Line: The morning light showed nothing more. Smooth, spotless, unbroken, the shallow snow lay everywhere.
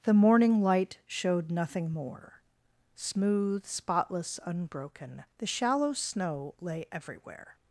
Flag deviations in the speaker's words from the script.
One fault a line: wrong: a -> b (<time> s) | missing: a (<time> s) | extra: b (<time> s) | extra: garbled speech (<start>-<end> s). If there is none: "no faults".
no faults